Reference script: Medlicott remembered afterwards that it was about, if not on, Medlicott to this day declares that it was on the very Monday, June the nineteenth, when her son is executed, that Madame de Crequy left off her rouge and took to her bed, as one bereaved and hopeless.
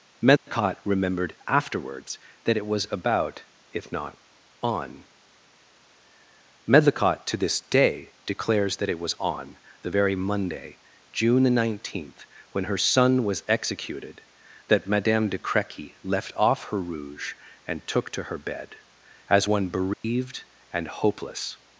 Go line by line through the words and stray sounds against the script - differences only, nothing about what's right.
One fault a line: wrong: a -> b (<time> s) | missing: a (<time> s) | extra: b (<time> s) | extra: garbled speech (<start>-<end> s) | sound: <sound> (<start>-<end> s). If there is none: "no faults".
sound: dropout (0.4-0.5 s)
wrong: is -> was (13.2 s)
sound: dropout (19.9-20.0 s)